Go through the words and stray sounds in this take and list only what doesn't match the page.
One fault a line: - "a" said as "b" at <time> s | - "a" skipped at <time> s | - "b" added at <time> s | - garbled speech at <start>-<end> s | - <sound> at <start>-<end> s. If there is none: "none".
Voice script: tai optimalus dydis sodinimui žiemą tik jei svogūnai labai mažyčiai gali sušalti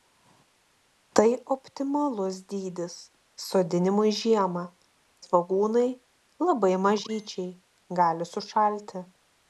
- "tik jei" skipped at 4.6 s